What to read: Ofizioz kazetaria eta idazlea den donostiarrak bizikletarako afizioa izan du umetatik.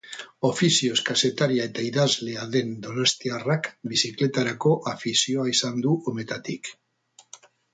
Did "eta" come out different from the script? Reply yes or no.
no